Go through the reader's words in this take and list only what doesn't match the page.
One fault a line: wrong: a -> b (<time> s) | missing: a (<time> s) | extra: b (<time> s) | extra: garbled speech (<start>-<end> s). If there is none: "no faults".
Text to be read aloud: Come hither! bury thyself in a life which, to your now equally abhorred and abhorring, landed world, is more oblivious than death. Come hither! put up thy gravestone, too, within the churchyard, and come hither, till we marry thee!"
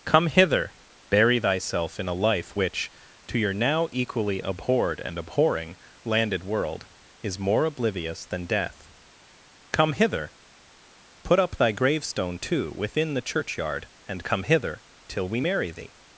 no faults